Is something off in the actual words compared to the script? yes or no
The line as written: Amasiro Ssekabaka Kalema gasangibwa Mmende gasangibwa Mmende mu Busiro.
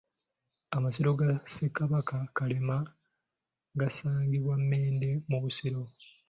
yes